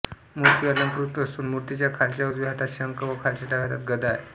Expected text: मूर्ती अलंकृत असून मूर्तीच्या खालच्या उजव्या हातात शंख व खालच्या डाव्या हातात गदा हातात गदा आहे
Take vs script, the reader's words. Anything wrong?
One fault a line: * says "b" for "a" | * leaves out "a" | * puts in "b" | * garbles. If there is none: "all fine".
* leaves out "हातात गदा"